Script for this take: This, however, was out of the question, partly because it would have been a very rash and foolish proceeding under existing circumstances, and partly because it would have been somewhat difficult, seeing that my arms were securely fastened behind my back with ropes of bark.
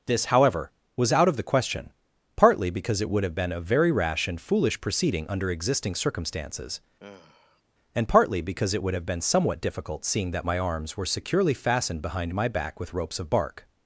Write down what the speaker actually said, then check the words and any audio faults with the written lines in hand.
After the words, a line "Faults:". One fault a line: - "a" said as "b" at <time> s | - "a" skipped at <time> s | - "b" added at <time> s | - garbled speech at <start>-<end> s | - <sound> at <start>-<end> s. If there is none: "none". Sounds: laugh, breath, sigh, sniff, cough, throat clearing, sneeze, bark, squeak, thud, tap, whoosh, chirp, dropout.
This, however, was out of the question, partly because it would have been a very rash and foolish proceeding under existing circumstances, and partly because it would have been somewhat difficult, seeing that my arms were securely fastened behind my back with ropes of bark.
Faults:
- sigh at 7.0-7.6 s